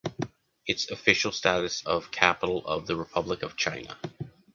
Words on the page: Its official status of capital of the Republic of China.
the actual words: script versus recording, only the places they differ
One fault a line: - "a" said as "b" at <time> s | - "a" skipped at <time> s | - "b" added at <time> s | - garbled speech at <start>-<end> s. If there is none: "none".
none